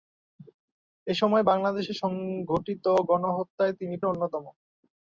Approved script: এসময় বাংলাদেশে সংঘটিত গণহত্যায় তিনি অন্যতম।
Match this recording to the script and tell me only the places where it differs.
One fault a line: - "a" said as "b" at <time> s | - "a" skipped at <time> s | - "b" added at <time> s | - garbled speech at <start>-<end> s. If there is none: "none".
none